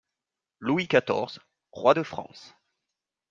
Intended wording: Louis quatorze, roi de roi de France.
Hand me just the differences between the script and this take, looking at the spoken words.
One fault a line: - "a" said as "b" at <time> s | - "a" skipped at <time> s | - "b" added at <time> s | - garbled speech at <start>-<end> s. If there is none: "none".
- "roi de" skipped at 2.0 s